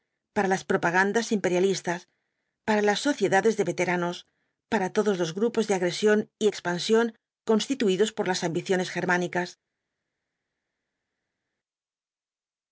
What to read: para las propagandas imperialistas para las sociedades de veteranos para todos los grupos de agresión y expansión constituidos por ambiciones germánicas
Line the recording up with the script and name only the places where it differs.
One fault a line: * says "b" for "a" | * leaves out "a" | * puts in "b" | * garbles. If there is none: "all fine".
* puts in "las"